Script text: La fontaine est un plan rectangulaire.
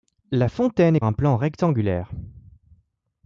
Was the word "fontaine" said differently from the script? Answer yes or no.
no